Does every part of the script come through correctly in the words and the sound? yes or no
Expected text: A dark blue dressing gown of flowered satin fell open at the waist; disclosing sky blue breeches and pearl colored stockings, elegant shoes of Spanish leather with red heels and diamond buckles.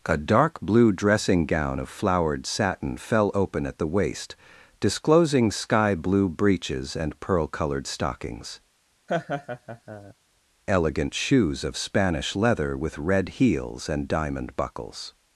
no